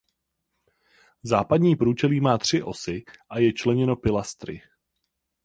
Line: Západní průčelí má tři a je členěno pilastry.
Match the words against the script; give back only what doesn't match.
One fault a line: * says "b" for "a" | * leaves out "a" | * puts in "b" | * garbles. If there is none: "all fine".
* puts in "osy"